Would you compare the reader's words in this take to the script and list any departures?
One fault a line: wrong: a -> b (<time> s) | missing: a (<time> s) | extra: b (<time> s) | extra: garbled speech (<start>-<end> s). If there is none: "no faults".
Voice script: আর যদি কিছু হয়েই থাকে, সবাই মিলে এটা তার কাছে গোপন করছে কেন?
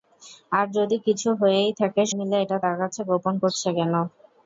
missing: সবাই (2.0 s)